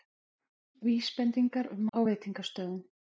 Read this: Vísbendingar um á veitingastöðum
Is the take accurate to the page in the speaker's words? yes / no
yes